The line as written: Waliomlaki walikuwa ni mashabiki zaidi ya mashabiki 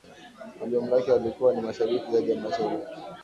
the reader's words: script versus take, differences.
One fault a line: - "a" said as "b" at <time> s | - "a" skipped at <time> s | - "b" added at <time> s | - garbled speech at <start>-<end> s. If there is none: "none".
none